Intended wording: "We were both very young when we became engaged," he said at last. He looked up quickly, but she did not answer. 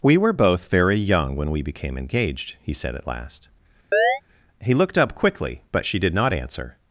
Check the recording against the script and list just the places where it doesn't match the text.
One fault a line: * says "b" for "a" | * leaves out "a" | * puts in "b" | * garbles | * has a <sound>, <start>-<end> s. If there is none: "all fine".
* has a chirp, 3.9-4.2 s